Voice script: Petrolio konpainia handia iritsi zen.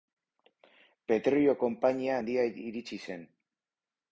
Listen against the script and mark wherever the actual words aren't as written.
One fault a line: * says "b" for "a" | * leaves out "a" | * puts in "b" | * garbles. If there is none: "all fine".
all fine